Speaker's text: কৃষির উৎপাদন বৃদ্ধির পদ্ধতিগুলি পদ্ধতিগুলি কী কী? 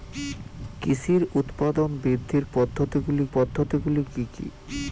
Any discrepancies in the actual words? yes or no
no